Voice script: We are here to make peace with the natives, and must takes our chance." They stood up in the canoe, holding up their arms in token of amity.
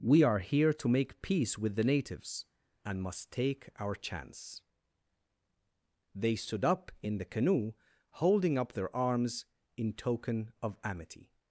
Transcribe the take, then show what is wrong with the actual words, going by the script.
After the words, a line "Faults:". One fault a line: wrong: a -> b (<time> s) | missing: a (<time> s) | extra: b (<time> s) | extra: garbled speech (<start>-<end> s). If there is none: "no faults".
We are here to make peace with the natives, and must take our chance." They stood up in the canoe, holding up their arms in token of amity.
Faults:
wrong: takes -> take (3.3 s)